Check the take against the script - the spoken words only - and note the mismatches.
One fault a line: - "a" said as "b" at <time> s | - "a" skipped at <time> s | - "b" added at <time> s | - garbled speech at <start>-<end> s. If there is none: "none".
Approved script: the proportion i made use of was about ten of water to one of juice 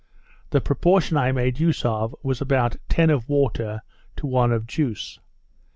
none